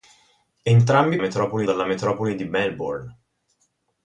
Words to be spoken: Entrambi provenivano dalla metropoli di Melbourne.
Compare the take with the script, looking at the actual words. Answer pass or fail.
fail